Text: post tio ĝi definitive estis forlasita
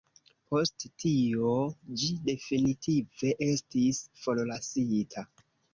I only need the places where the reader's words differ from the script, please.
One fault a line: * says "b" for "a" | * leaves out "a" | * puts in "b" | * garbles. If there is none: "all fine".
all fine